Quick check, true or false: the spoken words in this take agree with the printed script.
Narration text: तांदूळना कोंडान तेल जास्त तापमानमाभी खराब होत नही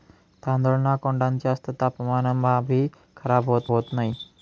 false